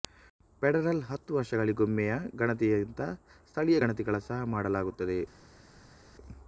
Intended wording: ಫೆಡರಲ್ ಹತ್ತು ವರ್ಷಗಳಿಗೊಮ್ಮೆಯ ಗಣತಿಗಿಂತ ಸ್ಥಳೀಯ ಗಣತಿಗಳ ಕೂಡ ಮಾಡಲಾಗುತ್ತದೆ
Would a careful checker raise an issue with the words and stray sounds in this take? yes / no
yes